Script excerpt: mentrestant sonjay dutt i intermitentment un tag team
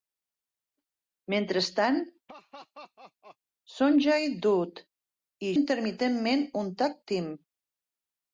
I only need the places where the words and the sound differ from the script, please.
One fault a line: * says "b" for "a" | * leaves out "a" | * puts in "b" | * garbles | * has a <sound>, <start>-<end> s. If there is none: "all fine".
* has a laugh, 2.3-3.4 s